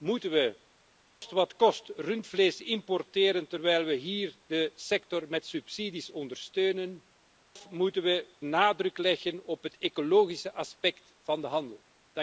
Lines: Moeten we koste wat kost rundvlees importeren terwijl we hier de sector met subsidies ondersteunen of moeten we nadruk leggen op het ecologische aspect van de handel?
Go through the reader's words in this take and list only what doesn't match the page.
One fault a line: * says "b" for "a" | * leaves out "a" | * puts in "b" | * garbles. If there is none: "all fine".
all fine